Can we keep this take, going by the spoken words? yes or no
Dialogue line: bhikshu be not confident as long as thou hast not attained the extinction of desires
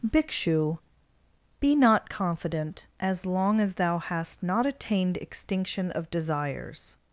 no